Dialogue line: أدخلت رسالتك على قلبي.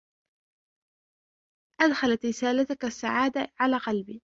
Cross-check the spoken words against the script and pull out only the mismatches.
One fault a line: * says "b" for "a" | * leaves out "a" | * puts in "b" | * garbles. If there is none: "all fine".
* puts in "السعادة"